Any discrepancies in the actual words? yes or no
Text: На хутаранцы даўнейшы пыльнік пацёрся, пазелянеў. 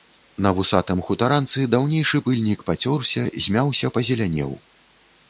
yes